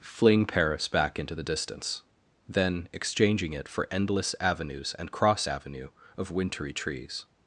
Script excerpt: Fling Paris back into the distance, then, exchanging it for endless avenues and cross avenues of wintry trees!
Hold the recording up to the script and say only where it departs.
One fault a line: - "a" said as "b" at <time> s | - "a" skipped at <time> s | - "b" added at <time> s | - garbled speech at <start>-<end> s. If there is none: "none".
- "avenues" said as "avenue" at 5.5 s